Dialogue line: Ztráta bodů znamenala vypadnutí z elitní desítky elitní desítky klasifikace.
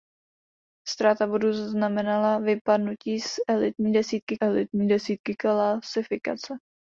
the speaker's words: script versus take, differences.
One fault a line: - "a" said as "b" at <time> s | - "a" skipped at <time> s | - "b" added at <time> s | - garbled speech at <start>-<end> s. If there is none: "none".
none